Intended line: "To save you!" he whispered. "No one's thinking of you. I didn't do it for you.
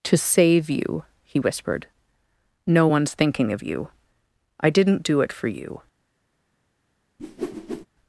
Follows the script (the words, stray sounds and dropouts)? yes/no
no